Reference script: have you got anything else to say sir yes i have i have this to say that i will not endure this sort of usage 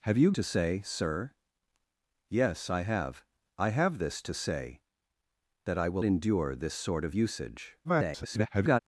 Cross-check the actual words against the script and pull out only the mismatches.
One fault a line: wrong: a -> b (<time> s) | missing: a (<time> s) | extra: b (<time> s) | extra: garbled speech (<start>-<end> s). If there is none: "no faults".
missing: got anything else (0.3 s)
missing: not (6.0 s)
extra: garbled speech (7.8-8.8 s)